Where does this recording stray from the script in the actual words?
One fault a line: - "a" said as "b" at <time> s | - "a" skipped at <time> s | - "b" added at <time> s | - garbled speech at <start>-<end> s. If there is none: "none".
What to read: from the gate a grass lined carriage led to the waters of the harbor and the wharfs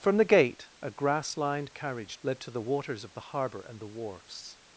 none